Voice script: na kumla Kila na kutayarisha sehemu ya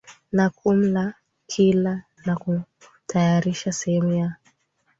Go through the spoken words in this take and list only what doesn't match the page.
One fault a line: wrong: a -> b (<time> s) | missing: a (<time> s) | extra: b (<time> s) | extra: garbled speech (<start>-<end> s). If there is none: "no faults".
no faults